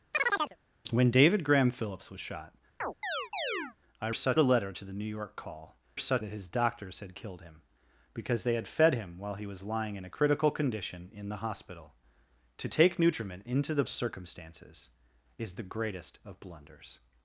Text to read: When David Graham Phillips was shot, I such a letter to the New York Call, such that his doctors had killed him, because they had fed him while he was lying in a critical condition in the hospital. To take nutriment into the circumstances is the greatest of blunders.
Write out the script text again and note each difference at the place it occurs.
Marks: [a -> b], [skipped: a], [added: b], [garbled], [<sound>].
[chirp] When David Graham Phillips was shot, [chirp] I such a letter to the New York Call, such that his doctors had killed him, because they had fed him while he was lying in a critical condition in the hospital. To take nutriment into the circumstances is the greatest of blunders.